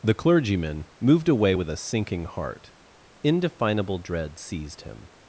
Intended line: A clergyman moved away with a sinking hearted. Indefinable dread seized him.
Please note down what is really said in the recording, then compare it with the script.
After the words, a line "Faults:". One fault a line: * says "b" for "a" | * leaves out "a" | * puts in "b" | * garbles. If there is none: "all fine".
The clergyman moved away with a sinking heart. Indefinable dread seized him.
Faults:
* says "The" for "A"
* says "heart" for "hearted"